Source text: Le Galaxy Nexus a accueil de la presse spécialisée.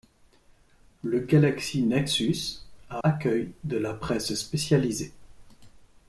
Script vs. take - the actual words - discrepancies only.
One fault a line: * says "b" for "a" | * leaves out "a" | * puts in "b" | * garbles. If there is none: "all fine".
all fine